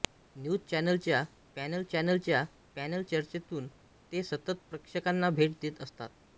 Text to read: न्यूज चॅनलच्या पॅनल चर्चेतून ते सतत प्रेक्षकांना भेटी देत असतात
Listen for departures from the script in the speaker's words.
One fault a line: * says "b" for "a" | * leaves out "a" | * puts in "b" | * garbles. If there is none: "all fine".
* puts in "चॅनलच्या पॅनल"